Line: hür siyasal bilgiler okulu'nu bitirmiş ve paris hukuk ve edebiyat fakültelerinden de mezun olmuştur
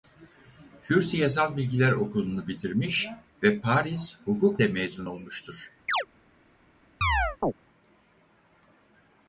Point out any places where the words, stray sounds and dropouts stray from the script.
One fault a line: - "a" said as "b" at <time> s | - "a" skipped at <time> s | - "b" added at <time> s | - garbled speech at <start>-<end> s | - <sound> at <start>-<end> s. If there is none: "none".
- "ve edebiyat fakültelerinden" skipped at 4.6 s
- chirp at 5.9-6.1 s
- chirp at 7.0-7.5 s